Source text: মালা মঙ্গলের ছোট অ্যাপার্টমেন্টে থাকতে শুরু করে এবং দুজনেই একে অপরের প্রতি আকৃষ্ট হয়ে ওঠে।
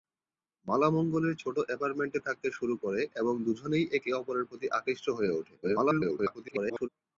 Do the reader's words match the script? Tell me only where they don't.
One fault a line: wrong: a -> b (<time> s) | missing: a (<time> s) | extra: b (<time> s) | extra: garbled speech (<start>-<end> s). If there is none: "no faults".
extra: garbled speech (5.6-6.9 s)